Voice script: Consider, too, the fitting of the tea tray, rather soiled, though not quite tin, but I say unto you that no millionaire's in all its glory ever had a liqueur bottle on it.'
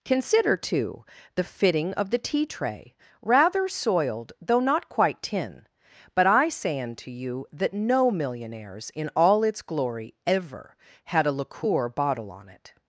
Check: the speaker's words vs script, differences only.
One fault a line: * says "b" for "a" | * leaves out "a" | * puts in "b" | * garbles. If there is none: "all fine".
all fine